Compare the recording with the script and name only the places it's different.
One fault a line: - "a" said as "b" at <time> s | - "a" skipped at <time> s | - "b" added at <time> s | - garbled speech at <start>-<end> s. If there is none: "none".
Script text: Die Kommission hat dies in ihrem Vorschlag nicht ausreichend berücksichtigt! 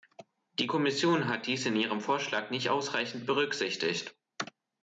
none